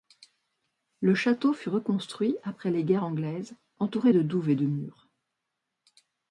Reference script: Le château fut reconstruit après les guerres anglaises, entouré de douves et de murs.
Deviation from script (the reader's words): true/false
false